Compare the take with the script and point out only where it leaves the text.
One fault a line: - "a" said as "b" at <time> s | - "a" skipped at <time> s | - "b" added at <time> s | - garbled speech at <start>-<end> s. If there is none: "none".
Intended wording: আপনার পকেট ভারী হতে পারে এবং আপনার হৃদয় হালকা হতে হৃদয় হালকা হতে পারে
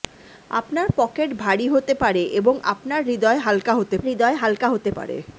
none